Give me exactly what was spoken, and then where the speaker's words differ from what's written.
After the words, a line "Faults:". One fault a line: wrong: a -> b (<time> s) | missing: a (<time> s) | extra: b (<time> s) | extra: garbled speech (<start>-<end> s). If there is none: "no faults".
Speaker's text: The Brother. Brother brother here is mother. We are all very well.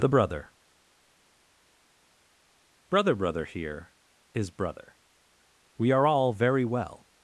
The Brother. Brother brother here is brother. We are all very well.
Faults:
wrong: mother -> brother (4.5 s)